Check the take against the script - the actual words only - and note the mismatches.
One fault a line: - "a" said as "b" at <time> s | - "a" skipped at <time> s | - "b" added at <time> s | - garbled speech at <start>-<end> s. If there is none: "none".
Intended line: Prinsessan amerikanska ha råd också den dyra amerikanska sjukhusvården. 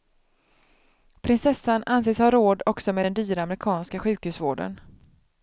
- "amerikanska" said as "anses" at 1.9 s
- "med" added at 2.9 s